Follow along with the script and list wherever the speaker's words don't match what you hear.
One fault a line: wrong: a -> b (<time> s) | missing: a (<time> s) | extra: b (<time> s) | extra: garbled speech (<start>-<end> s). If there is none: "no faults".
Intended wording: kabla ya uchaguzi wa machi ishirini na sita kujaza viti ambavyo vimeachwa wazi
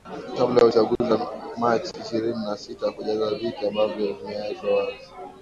no faults